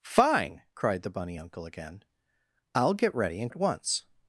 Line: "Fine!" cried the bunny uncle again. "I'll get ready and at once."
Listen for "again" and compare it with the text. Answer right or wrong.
right